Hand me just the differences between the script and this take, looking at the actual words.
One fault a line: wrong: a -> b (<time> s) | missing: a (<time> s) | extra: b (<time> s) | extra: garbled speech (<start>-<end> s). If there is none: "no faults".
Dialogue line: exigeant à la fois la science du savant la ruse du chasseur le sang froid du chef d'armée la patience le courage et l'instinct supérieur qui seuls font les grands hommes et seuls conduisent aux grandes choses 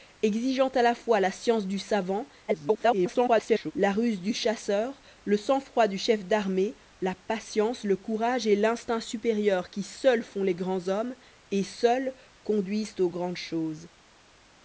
extra: garbled speech (2.5-3.7 s)